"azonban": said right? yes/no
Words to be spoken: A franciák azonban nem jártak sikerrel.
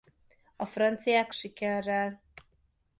no